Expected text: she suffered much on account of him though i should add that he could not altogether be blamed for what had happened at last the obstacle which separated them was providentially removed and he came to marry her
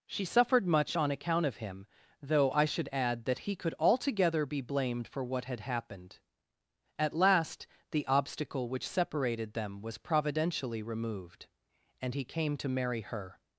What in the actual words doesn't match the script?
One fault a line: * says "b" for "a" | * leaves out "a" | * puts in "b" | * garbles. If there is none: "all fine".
* leaves out "not"